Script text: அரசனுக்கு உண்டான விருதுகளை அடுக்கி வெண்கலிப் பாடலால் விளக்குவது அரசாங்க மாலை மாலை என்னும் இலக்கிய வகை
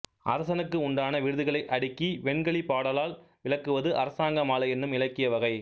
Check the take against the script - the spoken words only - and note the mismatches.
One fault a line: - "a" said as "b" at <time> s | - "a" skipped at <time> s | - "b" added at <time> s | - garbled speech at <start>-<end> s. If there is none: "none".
- "மாலை" skipped at 4.7 s